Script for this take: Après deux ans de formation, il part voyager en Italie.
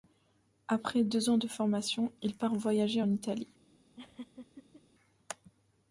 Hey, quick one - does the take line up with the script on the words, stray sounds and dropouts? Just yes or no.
no